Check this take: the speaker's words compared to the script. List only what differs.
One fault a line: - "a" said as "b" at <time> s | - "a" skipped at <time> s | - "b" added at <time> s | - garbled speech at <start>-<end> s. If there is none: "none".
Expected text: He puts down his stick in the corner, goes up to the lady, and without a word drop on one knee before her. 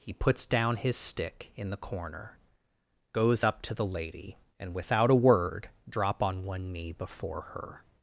none